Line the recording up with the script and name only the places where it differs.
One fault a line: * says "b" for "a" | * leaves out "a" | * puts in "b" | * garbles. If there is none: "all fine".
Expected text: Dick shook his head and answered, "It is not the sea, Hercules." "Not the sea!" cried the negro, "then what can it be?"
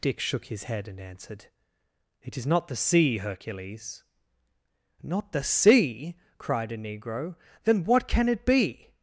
* says "a" for "the"